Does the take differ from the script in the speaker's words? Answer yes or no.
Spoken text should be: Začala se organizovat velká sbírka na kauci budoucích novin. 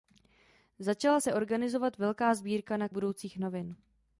yes